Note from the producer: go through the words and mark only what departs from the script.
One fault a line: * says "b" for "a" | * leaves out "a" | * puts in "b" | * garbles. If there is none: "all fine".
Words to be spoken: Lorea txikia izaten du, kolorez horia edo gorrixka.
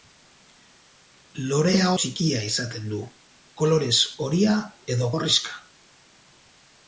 all fine